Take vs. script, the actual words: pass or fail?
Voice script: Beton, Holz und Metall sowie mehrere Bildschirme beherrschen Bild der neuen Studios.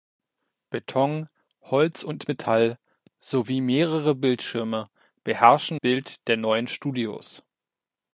pass